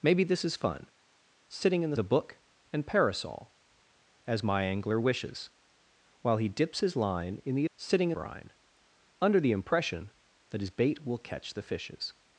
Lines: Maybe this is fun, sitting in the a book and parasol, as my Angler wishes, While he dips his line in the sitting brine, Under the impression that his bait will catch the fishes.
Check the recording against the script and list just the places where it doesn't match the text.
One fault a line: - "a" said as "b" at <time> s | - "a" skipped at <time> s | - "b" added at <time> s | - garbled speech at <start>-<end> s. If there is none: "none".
none